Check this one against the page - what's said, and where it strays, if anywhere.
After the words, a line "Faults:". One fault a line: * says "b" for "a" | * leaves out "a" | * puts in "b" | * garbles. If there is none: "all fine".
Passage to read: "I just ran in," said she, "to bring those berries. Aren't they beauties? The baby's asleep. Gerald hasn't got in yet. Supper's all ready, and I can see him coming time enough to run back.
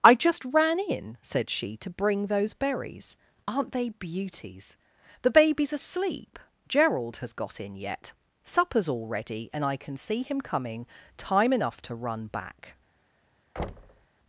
"I just ran in," said she, "to bring those berries. Aren't they beauties? The baby's asleep. Gerald has got in yet. Supper's all ready, and I can see him coming time enough to run back.
Faults:
* says "has" for "hasn't"